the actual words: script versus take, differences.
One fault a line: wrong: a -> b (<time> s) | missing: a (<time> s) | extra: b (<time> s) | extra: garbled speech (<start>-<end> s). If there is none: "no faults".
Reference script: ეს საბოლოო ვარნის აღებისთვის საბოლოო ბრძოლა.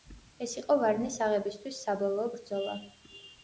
wrong: საბოლოო -> იყო (0.6 s)